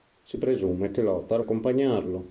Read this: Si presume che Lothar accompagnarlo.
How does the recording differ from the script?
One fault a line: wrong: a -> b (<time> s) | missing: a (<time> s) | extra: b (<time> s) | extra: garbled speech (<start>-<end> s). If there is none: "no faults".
no faults